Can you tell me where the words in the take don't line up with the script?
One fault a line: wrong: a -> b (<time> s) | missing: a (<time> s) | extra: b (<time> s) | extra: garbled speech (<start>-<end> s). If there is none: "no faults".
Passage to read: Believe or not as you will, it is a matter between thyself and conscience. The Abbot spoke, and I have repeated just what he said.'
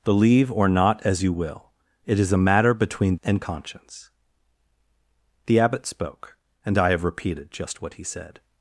missing: thyself (3.2 s)